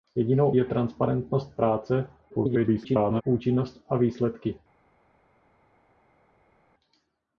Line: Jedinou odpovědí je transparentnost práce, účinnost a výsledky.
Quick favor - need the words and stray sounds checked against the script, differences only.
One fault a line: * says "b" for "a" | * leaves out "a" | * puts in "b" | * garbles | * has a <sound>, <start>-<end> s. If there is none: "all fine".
* leaves out "odpovědí"
* garbles